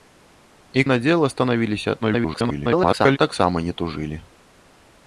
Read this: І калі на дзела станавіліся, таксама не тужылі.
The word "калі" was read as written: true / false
false